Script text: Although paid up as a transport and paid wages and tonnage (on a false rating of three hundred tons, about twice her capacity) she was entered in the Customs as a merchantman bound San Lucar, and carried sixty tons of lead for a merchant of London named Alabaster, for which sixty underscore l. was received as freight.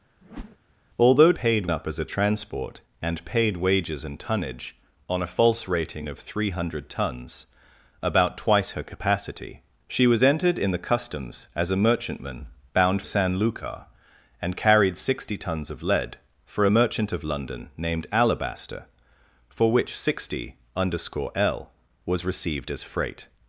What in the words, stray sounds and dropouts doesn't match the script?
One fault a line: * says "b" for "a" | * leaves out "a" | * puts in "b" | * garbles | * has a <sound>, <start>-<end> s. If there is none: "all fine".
* has a whoosh, 0.2-0.6 s